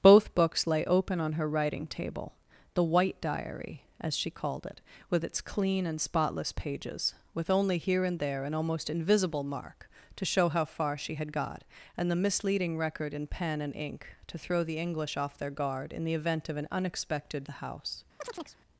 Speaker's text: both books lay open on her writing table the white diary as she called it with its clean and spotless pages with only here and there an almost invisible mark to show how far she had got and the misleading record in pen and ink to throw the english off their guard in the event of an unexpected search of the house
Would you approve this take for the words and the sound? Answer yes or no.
no